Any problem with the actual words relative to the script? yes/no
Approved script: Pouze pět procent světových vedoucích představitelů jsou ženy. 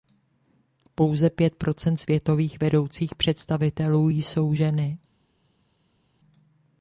no